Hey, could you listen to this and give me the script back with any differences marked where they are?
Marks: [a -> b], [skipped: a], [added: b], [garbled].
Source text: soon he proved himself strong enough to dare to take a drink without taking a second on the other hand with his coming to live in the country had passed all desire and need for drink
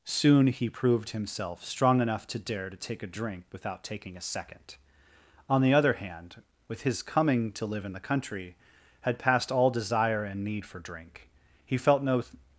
soon he proved himself strong enough to dare to take a drink without taking a second on the other hand with his coming to live in the country had passed all desire and need for drink [added: he felt no]